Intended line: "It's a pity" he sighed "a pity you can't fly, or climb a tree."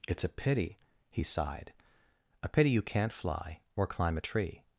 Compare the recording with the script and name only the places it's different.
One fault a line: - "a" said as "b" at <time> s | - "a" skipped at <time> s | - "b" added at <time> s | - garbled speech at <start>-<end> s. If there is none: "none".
none